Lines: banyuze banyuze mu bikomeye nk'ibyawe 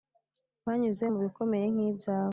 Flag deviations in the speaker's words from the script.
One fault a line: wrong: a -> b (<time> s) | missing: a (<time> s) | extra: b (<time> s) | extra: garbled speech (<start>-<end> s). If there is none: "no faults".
missing: banyuze (1.1 s)